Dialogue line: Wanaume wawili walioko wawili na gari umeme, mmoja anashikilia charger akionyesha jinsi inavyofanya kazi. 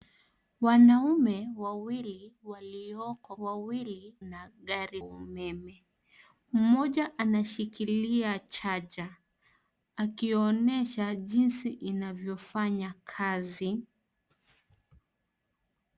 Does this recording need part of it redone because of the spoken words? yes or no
no